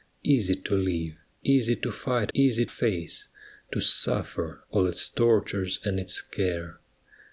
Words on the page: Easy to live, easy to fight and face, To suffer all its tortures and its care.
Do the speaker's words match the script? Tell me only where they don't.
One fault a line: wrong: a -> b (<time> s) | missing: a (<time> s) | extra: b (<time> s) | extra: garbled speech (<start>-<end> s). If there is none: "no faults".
wrong: and -> easy (2.3 s)